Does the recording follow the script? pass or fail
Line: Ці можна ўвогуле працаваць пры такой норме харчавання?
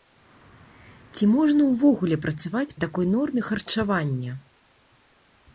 fail